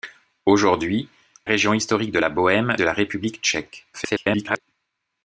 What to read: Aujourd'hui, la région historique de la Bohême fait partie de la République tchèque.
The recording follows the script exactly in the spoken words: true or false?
false